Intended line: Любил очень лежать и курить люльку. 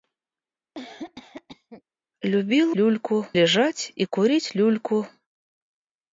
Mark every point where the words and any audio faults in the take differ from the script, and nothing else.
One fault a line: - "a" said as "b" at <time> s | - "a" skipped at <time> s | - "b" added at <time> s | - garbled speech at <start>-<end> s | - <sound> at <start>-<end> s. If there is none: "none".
- cough at 0.7-1.8 s
- "очень" said as "люльку" at 2.7 s